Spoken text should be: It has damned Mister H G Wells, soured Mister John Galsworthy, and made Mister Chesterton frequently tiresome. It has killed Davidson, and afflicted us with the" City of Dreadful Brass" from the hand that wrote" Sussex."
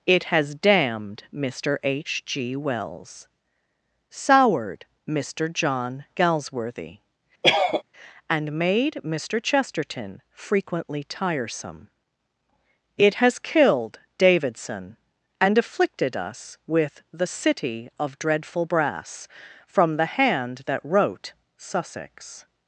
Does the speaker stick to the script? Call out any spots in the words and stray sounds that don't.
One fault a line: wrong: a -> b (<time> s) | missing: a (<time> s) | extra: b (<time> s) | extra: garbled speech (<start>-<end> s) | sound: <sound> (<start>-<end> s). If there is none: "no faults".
sound: cough (7.4-7.8 s)